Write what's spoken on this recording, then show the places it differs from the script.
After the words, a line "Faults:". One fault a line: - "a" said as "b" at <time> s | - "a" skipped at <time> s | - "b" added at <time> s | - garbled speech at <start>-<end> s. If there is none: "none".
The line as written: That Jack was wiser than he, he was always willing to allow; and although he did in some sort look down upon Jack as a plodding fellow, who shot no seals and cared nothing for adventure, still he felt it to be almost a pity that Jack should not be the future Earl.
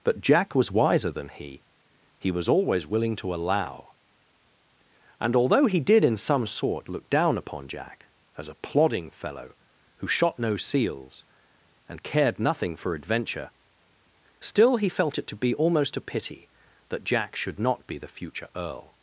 But Jack was wiser than he, he was always willing to allow; and although he did in some sort look down upon Jack as a plodding fellow, who shot no seals and cared nothing for adventure, still he felt it to be almost a pity that Jack should not be the future Earl.
Faults:
- "That" said as "But" at 0.0 s